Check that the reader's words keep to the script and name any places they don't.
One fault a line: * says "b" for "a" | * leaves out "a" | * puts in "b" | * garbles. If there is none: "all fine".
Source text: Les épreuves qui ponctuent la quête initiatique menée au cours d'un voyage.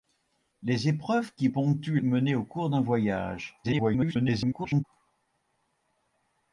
* leaves out "la quête initiatique"
* garbles